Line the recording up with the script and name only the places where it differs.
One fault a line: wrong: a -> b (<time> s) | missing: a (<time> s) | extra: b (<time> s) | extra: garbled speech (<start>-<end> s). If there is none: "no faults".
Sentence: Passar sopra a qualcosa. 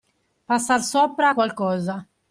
no faults